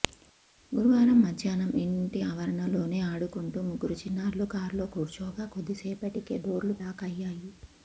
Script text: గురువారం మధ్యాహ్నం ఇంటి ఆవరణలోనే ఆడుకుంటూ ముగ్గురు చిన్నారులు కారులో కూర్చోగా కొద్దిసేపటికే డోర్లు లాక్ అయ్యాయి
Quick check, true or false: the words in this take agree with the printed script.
true